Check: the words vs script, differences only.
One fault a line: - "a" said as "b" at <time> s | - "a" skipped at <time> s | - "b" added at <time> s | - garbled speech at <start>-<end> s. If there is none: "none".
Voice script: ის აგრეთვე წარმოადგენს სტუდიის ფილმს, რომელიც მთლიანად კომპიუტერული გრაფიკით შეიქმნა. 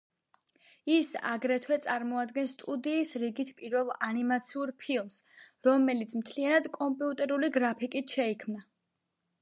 - "რიგით პირველ ანიმაციურ" added at 3.2 s